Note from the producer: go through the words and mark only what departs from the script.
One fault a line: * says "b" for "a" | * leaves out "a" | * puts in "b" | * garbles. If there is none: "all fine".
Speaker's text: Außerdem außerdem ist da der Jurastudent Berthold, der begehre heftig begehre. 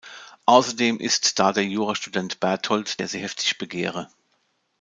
* leaves out "außerdem"
* says "sie" for "begehre"